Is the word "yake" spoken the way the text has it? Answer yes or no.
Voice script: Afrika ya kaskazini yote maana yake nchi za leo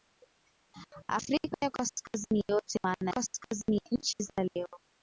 no